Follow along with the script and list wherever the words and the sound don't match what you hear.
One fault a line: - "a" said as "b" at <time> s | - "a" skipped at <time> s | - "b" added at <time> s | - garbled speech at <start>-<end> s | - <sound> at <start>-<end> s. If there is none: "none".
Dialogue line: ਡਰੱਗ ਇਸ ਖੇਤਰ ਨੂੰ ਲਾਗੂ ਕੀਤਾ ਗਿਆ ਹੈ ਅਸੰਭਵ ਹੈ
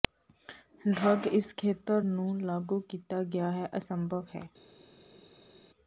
none